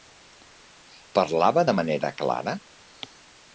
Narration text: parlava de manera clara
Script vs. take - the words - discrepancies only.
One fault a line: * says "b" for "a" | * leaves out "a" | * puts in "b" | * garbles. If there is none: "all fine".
all fine